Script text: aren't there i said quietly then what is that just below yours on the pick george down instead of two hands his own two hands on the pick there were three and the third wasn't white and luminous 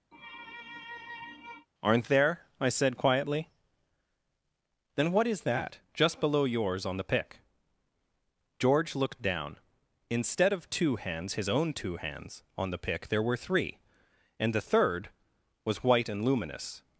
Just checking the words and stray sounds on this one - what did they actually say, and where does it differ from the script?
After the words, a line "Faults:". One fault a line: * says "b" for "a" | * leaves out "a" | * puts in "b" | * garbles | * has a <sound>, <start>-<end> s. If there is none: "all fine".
aren't there i said quietly then what is that just below yours on the pick george looked down instead of two hands his own two hands on the pick there were three and the third was white and luminous
Faults:
* has a sneeze, 0.1-1.7 s
* puts in "looked"
* says "was" for "wasn't"